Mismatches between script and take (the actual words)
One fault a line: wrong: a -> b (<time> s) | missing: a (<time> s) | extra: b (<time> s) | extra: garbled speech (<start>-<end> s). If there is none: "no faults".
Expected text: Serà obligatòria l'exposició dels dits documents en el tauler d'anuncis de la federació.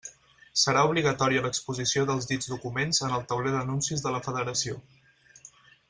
no faults